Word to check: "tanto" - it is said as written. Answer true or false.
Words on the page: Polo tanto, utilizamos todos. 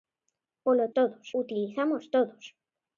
false